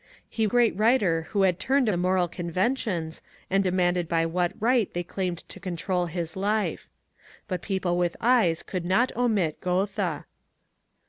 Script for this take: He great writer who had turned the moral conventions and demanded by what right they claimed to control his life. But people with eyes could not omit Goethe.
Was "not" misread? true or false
false